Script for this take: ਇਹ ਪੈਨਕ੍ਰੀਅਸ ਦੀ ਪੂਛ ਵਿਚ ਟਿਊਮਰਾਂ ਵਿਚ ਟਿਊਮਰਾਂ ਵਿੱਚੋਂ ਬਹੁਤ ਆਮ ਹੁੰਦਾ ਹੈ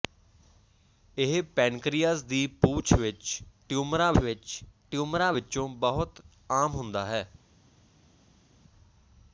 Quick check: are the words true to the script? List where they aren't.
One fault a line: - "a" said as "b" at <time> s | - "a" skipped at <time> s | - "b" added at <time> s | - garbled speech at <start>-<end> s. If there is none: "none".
none